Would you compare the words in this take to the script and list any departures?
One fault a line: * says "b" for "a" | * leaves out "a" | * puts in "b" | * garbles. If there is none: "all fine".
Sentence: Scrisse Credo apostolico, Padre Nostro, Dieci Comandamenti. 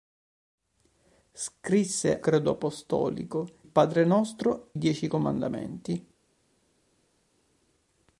all fine